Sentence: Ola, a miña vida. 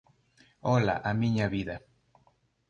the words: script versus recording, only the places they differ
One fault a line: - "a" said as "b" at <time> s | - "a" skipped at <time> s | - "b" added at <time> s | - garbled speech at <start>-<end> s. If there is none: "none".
none